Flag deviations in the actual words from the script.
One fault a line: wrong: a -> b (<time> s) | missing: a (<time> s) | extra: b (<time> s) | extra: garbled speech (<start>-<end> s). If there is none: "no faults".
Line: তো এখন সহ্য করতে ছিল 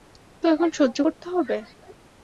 wrong: ছিল -> হবে (1.3 s)